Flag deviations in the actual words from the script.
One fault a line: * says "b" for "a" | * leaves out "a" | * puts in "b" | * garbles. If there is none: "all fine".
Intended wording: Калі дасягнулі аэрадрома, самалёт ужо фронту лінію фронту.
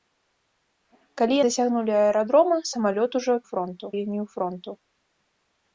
all fine